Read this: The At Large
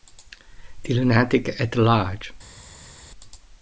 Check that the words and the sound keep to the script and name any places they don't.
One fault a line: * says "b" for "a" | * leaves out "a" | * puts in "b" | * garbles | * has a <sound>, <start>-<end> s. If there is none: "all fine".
* puts in "Lunatic"